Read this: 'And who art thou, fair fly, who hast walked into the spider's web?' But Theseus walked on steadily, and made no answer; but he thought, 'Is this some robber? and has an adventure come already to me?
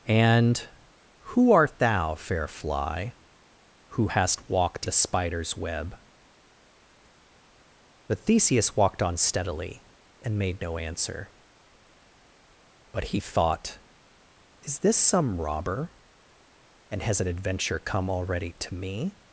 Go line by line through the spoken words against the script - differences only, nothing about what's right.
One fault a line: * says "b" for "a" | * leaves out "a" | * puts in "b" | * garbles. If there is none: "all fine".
* leaves out "into"